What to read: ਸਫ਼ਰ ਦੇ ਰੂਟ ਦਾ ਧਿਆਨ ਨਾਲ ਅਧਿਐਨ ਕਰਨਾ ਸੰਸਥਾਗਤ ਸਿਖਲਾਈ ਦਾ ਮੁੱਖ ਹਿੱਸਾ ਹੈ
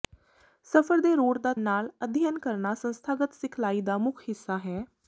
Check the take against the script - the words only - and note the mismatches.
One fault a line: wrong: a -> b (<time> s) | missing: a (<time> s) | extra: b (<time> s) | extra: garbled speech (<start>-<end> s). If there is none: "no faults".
missing: ਧਿਆਨ (1.5 s)